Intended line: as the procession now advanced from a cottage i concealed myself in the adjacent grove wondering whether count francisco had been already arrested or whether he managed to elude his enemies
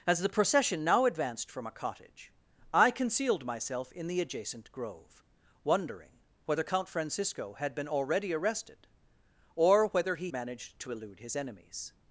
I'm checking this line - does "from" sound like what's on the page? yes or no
yes